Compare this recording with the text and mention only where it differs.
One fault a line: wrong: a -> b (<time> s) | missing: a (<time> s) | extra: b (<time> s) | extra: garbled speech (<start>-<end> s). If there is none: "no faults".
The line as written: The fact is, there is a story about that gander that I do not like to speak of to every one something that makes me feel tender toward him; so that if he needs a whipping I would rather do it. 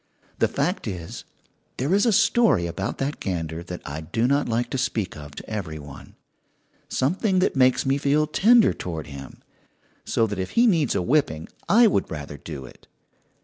no faults